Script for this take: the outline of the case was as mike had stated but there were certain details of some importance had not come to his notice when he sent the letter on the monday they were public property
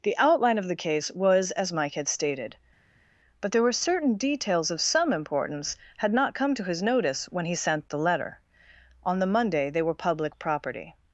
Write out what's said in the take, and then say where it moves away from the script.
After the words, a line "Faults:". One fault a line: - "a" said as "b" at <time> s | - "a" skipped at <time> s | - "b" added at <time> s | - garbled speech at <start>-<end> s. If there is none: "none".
the outline of the case was as mike had stated but there were certain details of some importance had not come to his notice when he sent the letter on the monday they were public property
Faults:
none